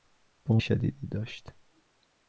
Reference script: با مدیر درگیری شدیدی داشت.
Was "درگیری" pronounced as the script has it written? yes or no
no